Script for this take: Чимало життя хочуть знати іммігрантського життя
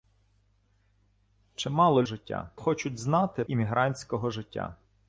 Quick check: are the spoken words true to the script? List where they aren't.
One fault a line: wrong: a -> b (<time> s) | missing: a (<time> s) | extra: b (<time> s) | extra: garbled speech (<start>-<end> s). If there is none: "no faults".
no faults